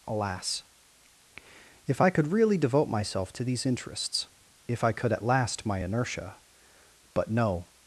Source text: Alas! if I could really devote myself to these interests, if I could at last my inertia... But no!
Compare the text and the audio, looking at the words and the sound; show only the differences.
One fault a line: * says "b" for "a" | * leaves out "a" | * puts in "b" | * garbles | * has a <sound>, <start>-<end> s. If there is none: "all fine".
all fine